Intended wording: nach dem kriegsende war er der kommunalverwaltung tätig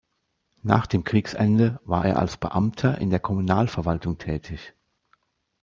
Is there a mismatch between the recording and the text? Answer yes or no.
yes